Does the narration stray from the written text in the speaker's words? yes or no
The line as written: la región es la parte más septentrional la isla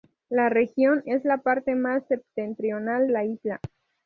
no